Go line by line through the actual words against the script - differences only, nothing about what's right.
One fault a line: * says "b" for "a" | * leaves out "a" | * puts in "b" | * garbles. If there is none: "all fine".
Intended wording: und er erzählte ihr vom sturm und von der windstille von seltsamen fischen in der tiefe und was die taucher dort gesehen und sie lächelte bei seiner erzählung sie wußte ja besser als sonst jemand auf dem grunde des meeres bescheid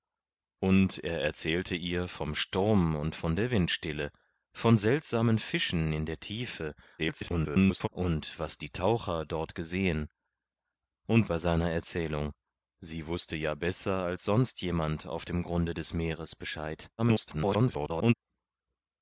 * garbles
* leaves out "sie lächelte"
* garbles